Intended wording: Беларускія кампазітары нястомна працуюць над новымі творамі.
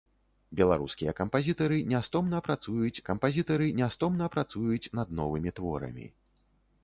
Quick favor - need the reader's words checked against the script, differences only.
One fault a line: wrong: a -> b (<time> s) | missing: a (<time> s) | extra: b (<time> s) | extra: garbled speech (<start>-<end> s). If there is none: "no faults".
extra: кампазітары нястомна працуюць (3.1 s)